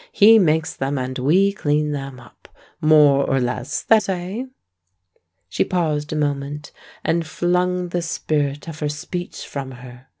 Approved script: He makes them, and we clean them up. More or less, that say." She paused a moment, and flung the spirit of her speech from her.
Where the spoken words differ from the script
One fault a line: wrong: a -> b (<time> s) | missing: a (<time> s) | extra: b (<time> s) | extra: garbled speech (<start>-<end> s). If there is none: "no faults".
no faults